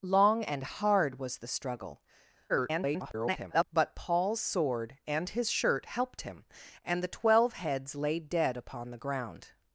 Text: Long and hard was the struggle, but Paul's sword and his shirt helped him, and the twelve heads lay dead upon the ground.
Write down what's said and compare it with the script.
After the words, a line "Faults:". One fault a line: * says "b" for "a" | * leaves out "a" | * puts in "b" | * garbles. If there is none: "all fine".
Long and hard was the struggle, [garbled] but Paul's sword and his shirt helped him, and the twelve heads lay dead upon the ground.
Faults:
* garbles